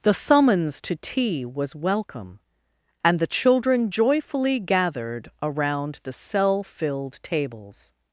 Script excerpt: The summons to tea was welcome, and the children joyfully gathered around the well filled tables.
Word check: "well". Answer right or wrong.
wrong